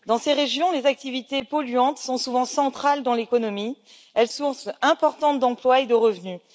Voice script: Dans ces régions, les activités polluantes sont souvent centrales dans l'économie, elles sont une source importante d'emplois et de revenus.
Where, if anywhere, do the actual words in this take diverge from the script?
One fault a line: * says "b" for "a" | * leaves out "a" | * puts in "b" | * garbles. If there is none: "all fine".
* leaves out "sont une"